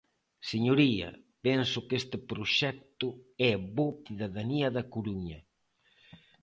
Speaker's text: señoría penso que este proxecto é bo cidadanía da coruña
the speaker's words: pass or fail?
pass